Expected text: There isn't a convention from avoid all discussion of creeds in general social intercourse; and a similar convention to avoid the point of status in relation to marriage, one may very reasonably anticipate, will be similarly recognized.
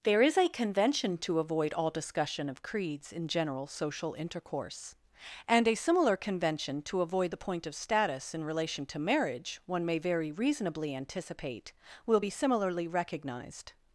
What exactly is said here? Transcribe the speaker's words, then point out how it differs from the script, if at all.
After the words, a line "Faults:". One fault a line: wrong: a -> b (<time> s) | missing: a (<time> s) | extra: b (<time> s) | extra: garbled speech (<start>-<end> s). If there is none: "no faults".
There is a convention to avoid all discussion of creeds in general social intercourse; and a similar convention to avoid the point of status in relation to marriage, one may very reasonably anticipate, will be similarly recognized.
Faults:
wrong: isn't -> is (0.2 s)
wrong: from -> to (1.2 s)